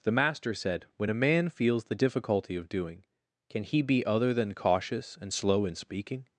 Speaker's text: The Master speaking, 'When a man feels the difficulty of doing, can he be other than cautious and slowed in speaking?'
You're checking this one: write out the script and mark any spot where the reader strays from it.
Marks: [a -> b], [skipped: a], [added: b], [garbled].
The Master [speaking, -> said] 'When a man feels the difficulty of doing, can he be other than cautious and [slowed -> slow] in speaking?'